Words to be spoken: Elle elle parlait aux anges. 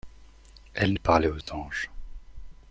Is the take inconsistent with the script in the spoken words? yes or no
no